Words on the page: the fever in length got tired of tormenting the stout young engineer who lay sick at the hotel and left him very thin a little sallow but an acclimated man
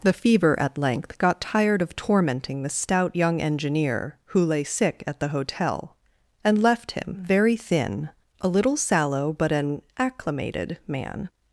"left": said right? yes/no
yes